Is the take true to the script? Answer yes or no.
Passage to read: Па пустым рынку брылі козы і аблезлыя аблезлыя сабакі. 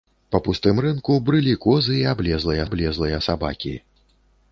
yes